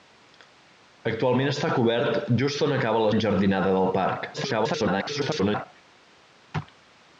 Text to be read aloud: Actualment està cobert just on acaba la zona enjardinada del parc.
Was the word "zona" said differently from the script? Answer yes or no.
yes